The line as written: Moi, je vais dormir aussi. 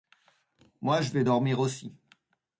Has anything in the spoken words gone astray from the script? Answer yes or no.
no